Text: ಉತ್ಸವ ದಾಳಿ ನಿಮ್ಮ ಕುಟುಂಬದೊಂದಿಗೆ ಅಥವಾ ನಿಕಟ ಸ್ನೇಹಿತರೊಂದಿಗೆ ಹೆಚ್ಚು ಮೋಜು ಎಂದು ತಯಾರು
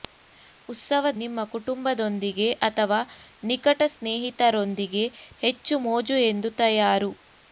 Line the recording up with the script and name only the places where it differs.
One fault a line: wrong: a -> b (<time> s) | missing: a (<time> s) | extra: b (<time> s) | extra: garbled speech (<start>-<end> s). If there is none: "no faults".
missing: ದಾಳಿ (1.1 s)